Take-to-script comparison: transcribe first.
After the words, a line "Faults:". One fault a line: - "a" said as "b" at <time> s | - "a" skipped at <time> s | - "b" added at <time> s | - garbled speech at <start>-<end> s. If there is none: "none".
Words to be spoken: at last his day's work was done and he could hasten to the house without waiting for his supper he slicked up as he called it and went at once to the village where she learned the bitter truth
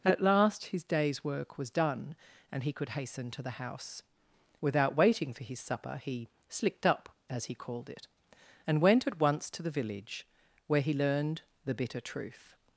at last his day's work was done and he could hasten to the house without waiting for his supper he slicked up as he called it and went at once to the village where he learned the bitter truth
Faults:
- "she" said as "he" at 10.8 s